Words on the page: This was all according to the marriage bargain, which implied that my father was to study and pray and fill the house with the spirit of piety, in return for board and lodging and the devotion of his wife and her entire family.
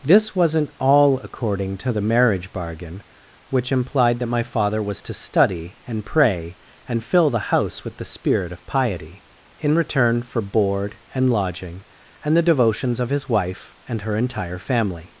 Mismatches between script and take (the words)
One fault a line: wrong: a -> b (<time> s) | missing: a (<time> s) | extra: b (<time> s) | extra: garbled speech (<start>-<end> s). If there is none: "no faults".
wrong: was -> wasn't (0.3 s)
wrong: devotion -> devotions (12.4 s)